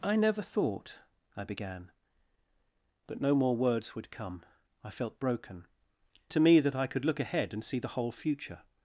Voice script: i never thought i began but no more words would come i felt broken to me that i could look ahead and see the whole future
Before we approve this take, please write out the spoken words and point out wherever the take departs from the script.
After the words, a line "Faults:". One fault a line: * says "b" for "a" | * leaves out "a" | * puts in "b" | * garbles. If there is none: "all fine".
i never thought i began but no more words would come i felt broken to me that i could look ahead and see the whole future
Faults:
all fine